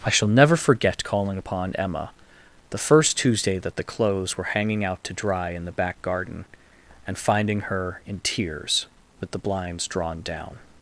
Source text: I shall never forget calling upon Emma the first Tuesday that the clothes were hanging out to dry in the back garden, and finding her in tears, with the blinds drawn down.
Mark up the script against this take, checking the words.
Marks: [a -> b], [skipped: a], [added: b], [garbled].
I shall never forget calling upon Emma the first Tuesday that the clothes were hanging out to dry in the back garden, and finding her in tears, with the blinds drawn down.